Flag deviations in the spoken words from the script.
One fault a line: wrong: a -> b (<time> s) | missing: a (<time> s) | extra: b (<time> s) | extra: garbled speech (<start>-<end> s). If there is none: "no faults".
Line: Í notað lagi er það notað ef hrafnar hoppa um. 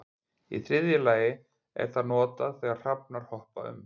wrong: notað -> þriðja (0.7 s)
wrong: ef -> þegar (2.6 s)